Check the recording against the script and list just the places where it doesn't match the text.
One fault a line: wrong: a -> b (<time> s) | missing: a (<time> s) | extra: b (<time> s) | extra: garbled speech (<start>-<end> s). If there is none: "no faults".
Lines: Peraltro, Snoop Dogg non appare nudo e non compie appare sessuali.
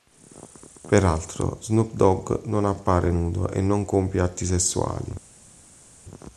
wrong: appare -> atti (4.2 s)